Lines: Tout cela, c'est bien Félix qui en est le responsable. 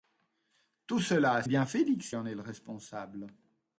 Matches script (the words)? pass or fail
fail